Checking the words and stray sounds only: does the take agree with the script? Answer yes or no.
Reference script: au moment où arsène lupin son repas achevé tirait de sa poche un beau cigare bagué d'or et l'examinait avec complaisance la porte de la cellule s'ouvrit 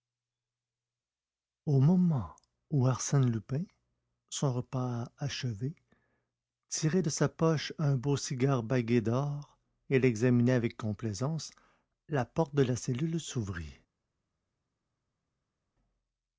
yes